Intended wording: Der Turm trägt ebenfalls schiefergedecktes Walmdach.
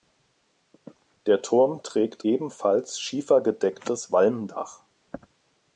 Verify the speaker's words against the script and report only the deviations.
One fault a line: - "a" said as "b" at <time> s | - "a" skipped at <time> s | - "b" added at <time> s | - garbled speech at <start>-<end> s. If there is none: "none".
none